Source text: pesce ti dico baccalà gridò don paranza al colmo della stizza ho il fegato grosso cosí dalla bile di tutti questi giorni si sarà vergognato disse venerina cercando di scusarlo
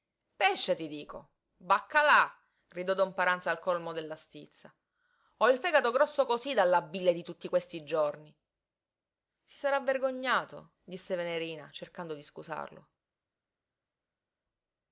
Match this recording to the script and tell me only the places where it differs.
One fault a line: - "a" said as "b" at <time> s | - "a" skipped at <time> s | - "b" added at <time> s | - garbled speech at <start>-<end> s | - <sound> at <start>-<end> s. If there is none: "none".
none